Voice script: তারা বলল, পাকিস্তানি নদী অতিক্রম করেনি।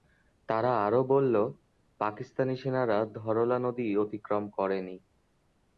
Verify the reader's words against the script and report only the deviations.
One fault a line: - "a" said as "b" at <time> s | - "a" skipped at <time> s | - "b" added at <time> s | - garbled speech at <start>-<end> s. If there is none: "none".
- "আরও" added at 0.8 s
- "সেনারা ধরলা" added at 2.6 s